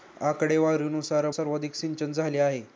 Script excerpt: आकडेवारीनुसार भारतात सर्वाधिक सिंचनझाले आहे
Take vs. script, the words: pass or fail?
fail